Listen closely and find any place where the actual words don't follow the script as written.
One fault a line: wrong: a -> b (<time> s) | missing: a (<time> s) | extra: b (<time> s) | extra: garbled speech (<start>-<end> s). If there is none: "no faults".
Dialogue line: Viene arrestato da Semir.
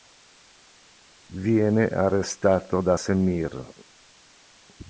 no faults